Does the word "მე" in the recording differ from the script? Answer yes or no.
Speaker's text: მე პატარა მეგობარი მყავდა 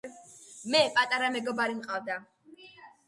no